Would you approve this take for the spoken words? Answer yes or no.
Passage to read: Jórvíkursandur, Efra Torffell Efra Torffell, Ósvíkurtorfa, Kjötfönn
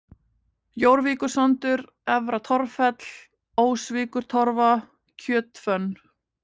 no